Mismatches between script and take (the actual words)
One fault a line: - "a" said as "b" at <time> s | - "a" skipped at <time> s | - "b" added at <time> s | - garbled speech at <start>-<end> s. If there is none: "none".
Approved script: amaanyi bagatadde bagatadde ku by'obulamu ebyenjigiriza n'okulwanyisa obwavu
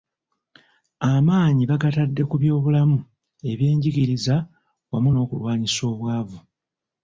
- "bagatadde" skipped at 2.2 s
- "wamu" added at 4.9 s